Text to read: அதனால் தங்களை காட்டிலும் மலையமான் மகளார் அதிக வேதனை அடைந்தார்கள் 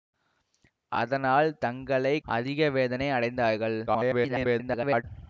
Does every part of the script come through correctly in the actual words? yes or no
no